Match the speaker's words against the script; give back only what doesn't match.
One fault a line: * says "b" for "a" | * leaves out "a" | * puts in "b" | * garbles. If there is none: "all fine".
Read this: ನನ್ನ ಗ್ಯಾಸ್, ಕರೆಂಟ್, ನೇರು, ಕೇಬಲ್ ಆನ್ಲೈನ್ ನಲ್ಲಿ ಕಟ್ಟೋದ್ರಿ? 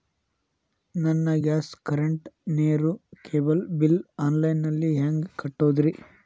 * puts in "ಬಿಲ್"
* puts in "ಹೆಂಗ್"